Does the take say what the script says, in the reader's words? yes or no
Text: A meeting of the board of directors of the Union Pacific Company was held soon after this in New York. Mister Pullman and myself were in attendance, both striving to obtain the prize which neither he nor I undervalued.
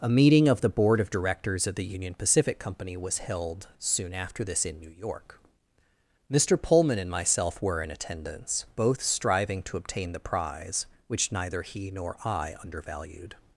yes